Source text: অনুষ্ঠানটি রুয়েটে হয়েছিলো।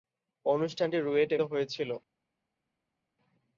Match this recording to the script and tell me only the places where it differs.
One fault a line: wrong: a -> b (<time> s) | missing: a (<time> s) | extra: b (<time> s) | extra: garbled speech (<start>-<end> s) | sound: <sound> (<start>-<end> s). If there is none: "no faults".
no faults